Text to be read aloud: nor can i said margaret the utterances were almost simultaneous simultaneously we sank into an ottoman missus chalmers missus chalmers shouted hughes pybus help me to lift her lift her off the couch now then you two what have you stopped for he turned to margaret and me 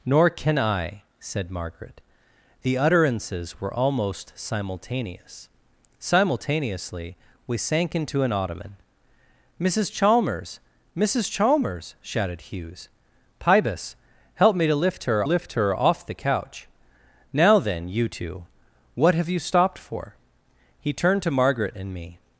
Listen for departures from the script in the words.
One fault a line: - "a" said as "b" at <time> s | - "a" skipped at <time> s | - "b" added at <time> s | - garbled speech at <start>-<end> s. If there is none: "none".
none